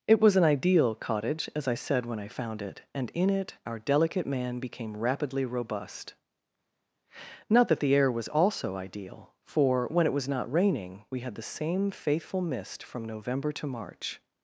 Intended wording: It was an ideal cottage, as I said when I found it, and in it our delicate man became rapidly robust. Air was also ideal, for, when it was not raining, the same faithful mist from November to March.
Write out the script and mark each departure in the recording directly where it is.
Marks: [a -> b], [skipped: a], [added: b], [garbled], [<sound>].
It was an ideal cottage, as I said when I found it, and in it our delicate man became rapidly robust. [added: Not that the] Air was also ideal, for, when it was not raining, [added: we had] the same faithful mist from November to March.